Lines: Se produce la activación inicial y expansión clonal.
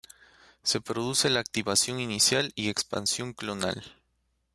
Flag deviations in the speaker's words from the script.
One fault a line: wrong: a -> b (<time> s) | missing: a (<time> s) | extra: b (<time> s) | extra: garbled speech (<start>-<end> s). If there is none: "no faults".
no faults